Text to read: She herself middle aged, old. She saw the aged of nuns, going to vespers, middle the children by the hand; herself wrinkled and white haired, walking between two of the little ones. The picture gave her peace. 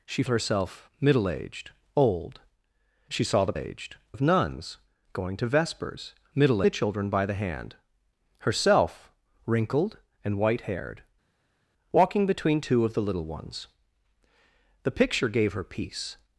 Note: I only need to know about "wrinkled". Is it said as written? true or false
true